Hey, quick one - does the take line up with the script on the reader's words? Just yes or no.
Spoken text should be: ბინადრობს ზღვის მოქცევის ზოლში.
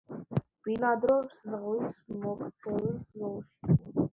yes